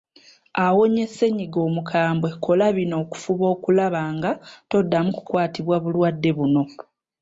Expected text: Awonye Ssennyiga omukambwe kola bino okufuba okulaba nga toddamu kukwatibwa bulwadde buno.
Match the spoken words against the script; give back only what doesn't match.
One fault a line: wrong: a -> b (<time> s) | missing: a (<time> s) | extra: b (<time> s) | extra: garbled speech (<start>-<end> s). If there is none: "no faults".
no faults